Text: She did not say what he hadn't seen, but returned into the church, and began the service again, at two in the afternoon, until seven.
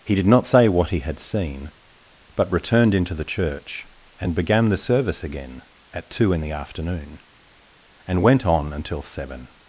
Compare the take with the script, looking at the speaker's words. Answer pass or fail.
fail